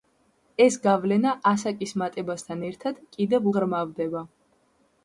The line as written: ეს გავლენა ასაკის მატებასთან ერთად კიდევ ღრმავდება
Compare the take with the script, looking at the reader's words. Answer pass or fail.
pass